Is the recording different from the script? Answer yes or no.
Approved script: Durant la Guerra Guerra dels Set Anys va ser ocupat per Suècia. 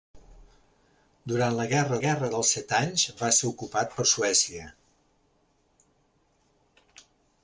no